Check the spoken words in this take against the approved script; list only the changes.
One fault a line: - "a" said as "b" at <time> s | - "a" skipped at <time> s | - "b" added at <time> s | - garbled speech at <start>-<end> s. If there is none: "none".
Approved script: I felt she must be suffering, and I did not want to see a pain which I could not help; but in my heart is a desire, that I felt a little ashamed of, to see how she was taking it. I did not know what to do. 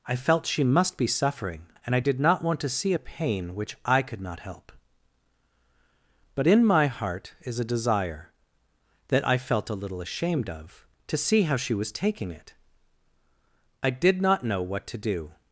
none